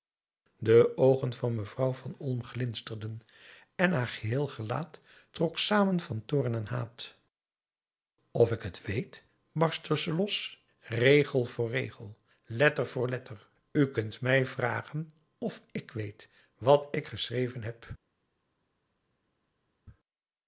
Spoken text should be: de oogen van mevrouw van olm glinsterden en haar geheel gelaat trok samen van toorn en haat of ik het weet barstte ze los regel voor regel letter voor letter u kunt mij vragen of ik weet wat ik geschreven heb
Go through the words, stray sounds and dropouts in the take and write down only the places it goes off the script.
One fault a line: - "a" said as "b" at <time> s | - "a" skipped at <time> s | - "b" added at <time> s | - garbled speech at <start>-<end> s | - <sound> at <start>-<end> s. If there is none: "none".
none